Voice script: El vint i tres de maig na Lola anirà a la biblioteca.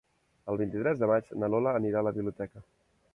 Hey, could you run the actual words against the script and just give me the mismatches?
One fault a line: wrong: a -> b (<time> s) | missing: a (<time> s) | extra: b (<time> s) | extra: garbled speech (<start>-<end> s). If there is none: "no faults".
no faults